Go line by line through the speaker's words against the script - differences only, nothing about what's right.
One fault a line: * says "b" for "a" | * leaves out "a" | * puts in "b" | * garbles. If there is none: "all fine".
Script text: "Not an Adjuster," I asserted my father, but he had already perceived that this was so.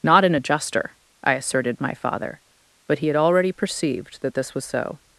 all fine